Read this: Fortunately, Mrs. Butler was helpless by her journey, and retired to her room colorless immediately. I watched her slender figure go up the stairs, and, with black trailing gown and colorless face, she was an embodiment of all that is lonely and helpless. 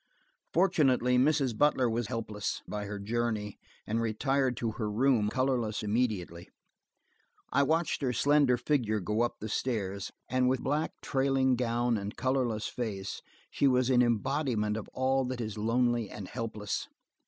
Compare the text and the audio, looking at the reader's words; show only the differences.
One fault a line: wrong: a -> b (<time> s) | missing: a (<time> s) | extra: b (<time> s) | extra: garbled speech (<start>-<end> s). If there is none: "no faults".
no faults